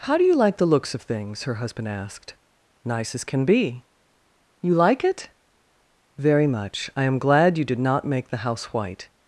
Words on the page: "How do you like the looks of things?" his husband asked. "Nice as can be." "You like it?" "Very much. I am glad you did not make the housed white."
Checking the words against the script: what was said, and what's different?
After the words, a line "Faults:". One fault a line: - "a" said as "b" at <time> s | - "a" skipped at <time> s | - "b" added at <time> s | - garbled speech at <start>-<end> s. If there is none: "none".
"How do you like the looks of things?" her husband asked. "Nice as can be." "You like it?" "Very much. I am glad you did not make the house white."
Faults:
- "his" said as "her" at 1.4 s
- "housed" said as "house" at 8.5 s